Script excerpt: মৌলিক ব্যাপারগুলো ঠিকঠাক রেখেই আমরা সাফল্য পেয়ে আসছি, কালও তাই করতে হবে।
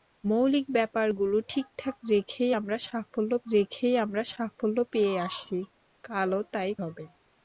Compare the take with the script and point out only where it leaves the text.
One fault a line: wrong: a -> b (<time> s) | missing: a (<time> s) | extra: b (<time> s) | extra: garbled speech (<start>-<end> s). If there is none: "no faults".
extra: রেখেই আমরা সাফল্য (3.5 s)
missing: করতে (6.7 s)